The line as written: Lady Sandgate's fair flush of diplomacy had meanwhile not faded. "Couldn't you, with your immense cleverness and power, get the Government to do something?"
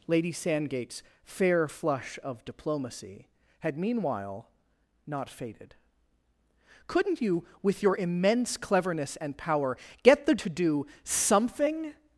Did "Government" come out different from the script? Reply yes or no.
yes